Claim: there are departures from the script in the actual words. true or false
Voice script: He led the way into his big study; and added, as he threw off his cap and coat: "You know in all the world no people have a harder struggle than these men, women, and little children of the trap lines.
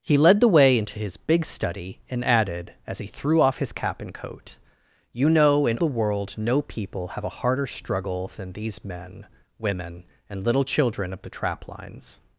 true